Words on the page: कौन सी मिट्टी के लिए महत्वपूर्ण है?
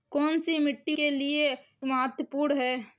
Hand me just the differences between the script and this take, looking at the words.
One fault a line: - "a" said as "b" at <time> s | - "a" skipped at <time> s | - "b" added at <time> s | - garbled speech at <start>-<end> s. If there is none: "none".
none